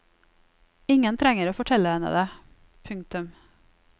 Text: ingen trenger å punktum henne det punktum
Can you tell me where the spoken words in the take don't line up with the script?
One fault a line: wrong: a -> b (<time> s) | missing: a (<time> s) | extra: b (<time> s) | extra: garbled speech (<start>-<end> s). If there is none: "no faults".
wrong: punktum -> fortelle (1.6 s)